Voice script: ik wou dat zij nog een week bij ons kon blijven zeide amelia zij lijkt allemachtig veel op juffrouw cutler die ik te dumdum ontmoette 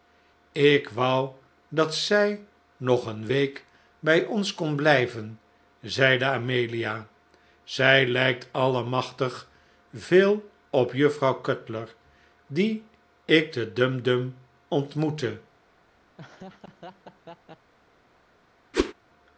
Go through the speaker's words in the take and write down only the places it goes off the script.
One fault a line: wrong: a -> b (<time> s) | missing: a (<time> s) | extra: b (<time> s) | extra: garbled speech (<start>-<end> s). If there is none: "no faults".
no faults